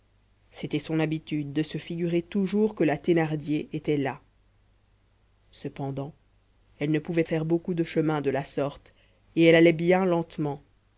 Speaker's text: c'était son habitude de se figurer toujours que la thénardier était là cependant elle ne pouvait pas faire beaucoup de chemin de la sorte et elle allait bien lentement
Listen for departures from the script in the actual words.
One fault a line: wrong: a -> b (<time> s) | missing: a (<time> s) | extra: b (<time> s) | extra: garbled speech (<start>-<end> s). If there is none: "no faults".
missing: pas (7.2 s)